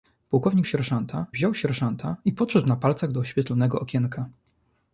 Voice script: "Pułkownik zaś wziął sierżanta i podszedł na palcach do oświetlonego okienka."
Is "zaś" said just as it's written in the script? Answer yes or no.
no